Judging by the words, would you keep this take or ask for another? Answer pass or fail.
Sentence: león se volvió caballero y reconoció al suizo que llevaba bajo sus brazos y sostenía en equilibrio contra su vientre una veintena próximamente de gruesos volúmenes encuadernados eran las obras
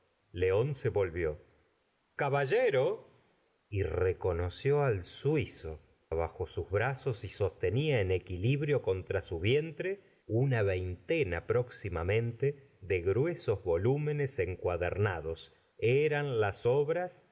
fail